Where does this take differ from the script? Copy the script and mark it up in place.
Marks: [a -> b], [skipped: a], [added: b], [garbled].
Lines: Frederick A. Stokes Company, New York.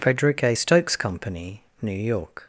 Frederick A. Stokes Company, New York.